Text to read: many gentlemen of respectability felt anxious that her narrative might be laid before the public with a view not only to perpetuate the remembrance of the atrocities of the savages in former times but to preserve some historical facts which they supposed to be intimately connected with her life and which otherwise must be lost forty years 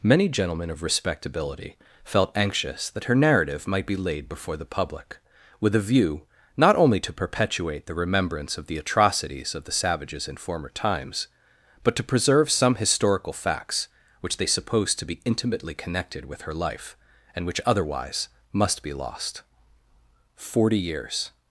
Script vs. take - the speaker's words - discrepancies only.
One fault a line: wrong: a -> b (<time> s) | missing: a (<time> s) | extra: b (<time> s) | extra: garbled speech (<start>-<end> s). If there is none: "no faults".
no faults